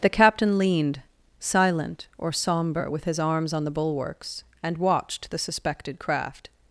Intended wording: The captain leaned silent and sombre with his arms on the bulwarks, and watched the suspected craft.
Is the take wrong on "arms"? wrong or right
right